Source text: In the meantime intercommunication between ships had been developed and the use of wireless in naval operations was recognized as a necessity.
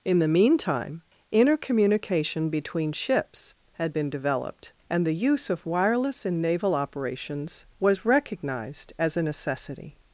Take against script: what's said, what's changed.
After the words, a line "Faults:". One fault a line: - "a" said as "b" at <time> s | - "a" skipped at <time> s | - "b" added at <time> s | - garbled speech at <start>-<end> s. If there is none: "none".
In the meantime intercommunication between ships had been developed and the use of wireless in naval operations was recognized as a necessity.
Faults:
none